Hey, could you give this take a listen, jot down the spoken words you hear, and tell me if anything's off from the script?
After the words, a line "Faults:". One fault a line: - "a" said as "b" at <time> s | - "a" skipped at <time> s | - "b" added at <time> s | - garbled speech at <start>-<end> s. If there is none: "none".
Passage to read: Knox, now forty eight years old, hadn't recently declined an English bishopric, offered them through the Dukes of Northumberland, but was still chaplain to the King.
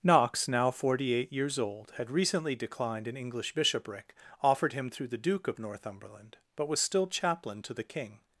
Knox, now forty eight years old, had recently declined an English bishopric, offered him through the Duke of Northumberland, but was still chaplain to the King.
Faults:
- "hadn't" said as "had" at 2.0 s
- "them" said as "him" at 4.7 s
- "Dukes" said as "Duke" at 5.2 s